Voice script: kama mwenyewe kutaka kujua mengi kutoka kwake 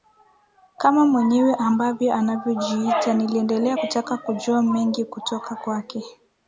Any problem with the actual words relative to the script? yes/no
yes